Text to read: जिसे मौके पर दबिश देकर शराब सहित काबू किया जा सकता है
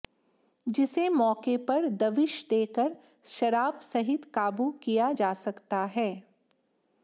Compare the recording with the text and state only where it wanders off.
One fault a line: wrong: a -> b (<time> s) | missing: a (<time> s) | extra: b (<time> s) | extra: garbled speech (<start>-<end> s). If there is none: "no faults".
no faults